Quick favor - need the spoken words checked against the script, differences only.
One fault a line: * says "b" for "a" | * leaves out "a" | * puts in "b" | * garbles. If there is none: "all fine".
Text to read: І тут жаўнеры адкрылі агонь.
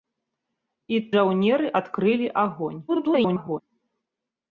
* leaves out "тут"
* garbles